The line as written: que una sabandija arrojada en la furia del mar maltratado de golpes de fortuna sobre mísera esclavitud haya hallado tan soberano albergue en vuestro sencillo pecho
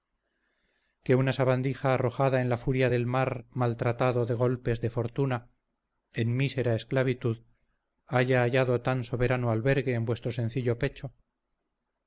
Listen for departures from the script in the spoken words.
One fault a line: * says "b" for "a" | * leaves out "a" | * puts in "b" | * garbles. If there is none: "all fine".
* says "en" for "sobre"